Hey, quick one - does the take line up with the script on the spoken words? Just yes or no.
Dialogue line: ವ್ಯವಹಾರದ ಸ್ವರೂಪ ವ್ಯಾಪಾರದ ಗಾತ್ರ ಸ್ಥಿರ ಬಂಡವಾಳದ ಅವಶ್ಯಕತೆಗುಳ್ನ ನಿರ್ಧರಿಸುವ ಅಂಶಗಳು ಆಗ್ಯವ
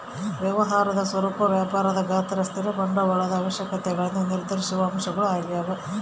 yes